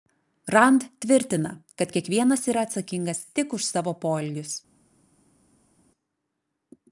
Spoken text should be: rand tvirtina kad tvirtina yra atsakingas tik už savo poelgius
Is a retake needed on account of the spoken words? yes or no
yes